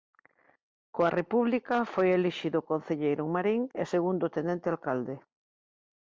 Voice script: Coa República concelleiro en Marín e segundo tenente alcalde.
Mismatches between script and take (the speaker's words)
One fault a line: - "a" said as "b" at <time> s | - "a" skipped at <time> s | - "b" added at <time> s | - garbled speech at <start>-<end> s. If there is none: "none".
- "foi elixido" added at 1.9 s